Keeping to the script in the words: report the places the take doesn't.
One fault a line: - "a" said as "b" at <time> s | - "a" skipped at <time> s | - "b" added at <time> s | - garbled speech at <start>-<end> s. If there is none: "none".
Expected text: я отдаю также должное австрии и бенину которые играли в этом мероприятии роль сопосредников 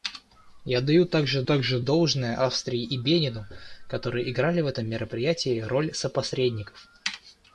- "также" added at 1.4 s